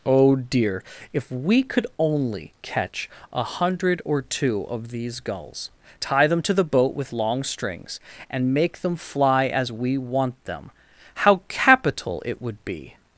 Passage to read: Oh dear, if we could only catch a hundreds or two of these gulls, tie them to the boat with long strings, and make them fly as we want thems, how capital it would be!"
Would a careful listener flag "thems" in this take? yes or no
yes